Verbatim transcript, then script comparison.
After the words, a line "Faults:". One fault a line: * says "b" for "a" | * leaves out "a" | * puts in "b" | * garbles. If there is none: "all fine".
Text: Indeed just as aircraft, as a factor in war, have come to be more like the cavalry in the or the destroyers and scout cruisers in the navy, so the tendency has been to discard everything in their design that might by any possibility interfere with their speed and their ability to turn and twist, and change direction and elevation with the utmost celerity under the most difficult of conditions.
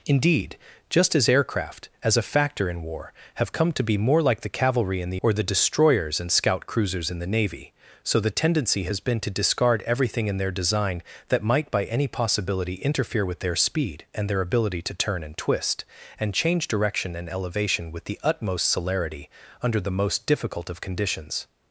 Indeed just as aircraft, as a factor in war, have come to be more like the cavalry in the or the destroyers and scout cruisers in the navy, so the tendency has been to discard everything in their design that might by any possibility interfere with their speed and their ability to turn and twist, and change direction and elevation with the utmost celerity under the most difficult of conditions.
Faults:
all fine